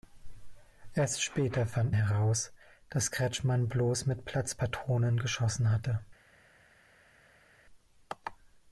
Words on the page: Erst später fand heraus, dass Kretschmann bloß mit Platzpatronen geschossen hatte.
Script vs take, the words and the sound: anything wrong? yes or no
no